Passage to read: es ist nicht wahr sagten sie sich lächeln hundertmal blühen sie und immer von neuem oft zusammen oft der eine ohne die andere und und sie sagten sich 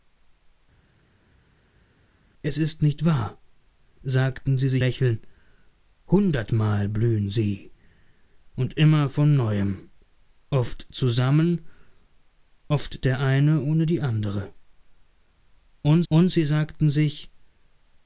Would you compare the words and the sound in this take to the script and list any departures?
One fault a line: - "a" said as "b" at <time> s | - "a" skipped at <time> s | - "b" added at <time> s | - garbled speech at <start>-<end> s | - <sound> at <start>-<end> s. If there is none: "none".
none